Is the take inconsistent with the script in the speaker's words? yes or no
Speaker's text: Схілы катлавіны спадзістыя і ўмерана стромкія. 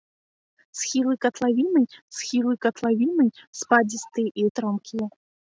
yes